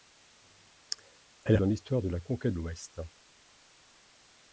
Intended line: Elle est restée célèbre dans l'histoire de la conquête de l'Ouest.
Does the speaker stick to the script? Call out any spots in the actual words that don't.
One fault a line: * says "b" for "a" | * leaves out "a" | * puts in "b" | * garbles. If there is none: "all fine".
* leaves out "restée célèbre"
* leaves out "de"